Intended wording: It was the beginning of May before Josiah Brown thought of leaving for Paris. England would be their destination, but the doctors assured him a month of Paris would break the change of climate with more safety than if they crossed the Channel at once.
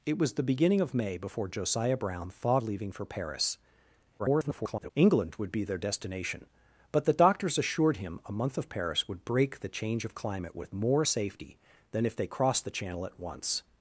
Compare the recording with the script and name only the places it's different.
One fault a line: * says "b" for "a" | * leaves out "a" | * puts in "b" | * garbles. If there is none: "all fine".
* leaves out "of"
* garbles